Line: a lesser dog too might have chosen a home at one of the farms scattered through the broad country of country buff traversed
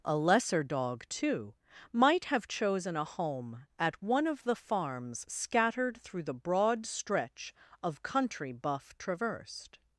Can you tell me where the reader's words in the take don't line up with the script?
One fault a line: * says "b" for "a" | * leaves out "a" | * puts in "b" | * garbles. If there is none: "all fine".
* says "stretch" for "country"